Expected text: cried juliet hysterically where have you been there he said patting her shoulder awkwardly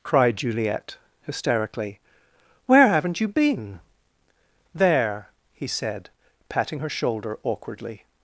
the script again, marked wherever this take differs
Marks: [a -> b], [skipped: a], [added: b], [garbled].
cried juliet hysterically where [have -> haven't] you been there he said patting her shoulder awkwardly